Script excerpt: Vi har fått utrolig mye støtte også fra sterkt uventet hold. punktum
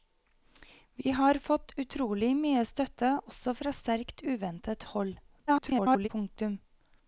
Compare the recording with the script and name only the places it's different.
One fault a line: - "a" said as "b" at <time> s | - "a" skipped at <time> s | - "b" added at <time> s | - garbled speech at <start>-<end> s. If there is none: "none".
- garbled speech at 5.5-6.1 s